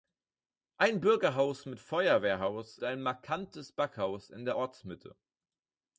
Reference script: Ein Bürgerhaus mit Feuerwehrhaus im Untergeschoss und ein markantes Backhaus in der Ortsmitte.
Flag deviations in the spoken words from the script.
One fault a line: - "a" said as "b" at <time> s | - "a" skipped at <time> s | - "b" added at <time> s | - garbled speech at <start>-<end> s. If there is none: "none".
- "im Untergeschoss und" skipped at 2.8 s